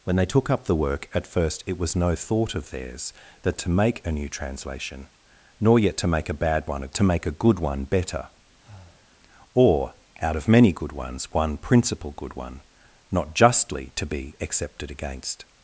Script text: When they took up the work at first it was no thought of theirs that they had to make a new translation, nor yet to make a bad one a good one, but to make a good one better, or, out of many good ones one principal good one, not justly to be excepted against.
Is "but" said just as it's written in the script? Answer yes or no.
no